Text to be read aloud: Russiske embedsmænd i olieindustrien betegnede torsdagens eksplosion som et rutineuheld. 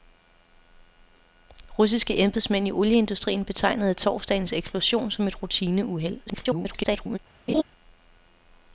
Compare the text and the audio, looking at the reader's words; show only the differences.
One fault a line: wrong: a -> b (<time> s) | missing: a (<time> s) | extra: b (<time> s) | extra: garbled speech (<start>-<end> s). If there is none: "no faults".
extra: garbled speech (6.3-7.2 s)